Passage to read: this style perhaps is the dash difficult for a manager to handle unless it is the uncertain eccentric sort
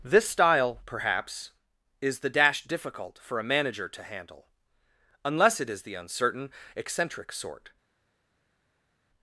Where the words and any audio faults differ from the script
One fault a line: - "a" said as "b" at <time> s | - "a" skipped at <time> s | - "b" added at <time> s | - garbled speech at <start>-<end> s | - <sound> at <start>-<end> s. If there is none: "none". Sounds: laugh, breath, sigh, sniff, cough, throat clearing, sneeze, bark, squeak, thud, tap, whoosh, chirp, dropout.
none